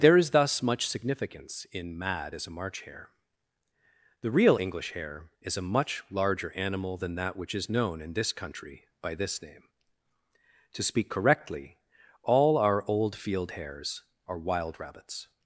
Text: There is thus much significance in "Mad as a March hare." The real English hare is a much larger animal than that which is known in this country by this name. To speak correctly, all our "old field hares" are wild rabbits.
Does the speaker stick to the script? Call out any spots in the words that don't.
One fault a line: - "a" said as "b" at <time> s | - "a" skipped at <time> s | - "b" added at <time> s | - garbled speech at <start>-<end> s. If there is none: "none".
none